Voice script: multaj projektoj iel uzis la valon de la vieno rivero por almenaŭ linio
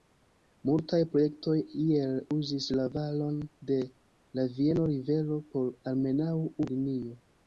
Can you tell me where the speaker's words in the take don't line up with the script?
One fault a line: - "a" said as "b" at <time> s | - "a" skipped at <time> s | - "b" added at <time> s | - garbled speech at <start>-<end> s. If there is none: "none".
none